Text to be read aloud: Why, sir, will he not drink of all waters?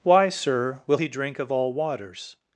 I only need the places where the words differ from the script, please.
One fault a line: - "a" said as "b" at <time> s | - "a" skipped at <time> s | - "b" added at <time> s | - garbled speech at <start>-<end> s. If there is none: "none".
- "not" skipped at 1.1 s